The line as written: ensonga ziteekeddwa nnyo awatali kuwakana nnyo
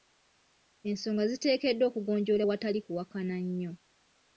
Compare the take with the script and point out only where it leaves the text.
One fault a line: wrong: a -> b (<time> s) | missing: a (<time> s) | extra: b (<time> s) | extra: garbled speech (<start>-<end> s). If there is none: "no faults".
wrong: nnyo -> okugonjoolwa (1.9 s)